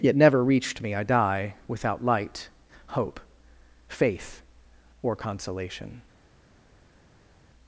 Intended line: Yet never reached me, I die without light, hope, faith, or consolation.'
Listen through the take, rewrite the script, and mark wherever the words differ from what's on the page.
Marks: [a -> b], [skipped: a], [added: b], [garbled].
Yet never reached me, I die without light, hope, faith, or consolation.'